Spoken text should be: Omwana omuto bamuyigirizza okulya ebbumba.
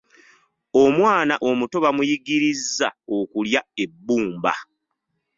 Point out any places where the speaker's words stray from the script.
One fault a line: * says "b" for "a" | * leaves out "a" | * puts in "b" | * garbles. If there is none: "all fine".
all fine